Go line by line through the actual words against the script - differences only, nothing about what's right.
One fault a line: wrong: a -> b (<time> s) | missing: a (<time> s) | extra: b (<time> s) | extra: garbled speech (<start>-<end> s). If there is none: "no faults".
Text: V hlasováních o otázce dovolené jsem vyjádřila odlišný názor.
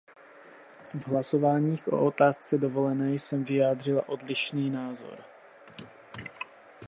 no faults